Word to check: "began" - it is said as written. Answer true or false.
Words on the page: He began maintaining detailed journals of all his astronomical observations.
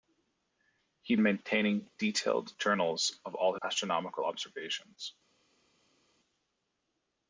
false